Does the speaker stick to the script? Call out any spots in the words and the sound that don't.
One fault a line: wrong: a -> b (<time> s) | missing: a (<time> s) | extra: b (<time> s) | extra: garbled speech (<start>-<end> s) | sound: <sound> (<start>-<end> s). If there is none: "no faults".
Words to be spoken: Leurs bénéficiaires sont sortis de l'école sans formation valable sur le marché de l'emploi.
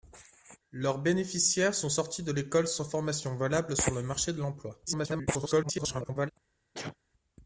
extra: garbled speech (4.9-6.3 s)
sound: sneeze (6.7-7.0 s)